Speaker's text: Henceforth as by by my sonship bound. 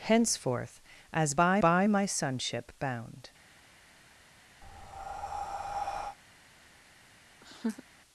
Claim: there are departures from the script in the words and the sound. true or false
true